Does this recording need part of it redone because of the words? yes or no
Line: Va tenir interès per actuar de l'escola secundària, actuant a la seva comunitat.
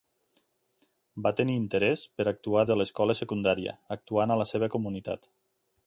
no